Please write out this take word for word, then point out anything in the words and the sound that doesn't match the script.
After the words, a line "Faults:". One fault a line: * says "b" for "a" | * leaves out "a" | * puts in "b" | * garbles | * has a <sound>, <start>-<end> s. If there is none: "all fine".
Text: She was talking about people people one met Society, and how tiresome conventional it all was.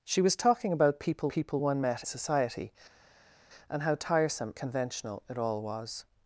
She was talking about people people one met Society, and how tiresome conventional it all was.
Faults:
all fine